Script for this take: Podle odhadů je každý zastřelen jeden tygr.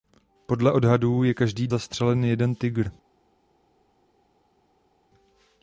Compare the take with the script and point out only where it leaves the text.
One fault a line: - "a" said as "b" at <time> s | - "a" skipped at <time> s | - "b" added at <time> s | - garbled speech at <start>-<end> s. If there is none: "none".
none